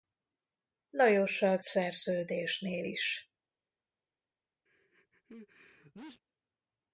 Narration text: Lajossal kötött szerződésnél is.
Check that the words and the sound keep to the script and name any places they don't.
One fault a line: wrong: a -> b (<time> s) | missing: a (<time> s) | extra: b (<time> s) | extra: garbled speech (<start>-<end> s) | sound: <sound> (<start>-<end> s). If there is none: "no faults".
missing: kötött (1.6 s)
sound: sneeze (4.7-6.2 s)